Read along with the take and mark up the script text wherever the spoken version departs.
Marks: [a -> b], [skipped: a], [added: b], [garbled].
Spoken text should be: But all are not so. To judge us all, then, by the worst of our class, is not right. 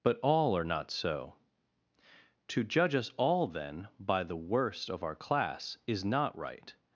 But all are not so. To judge us all, then, by the worst of our class, is not right.